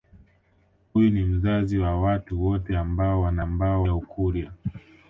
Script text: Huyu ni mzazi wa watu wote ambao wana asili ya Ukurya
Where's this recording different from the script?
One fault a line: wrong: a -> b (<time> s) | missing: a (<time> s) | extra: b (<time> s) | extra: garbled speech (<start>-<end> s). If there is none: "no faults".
wrong: asili -> ambao (3.4 s)